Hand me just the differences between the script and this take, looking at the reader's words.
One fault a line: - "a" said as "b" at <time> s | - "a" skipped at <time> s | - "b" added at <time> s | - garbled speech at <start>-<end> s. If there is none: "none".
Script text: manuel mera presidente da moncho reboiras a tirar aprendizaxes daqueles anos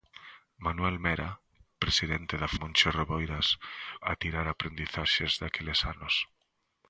none